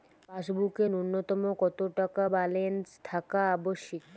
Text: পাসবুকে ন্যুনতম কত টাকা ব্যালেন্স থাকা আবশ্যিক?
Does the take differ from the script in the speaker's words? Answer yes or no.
no